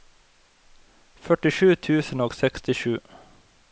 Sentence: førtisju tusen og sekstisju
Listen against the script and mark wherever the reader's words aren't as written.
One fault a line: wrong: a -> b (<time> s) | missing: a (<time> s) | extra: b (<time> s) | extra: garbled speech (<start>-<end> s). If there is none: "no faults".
no faults